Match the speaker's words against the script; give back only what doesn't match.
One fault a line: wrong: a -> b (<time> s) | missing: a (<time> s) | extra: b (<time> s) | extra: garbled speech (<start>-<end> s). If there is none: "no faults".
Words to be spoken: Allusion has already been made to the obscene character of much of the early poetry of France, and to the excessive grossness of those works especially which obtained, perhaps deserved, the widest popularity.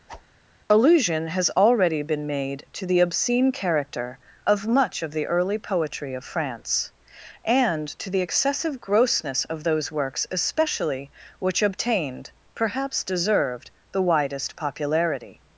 no faults